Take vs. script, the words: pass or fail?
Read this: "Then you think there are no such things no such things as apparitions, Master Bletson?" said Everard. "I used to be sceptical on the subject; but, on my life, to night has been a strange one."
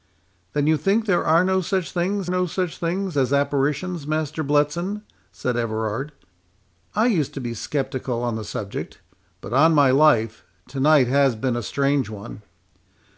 pass